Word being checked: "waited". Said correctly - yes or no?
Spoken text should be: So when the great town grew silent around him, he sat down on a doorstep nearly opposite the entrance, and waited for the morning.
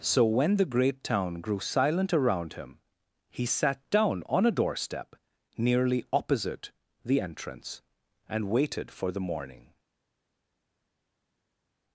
yes